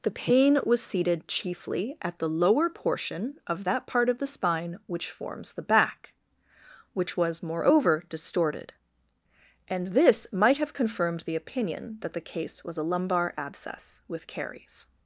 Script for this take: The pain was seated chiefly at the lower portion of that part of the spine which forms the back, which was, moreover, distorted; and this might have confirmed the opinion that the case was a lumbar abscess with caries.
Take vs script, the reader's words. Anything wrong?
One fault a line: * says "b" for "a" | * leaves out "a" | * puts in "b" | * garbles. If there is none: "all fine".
all fine